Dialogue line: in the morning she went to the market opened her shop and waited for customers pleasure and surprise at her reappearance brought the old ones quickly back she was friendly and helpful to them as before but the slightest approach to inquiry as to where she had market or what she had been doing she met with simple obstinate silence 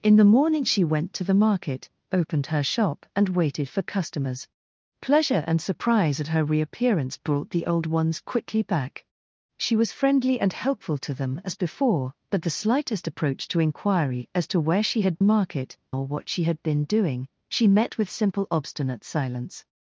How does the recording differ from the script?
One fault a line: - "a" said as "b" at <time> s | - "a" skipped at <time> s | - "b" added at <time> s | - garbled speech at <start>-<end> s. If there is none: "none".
none